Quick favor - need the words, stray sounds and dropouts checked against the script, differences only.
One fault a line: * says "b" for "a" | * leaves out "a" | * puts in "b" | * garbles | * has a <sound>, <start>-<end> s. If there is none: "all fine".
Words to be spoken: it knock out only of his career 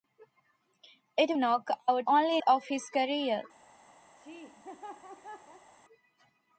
* has a laugh, 4.2-5.7 s